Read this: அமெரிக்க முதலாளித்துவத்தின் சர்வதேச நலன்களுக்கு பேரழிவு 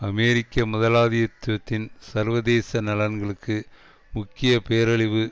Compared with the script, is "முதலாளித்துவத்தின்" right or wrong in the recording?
right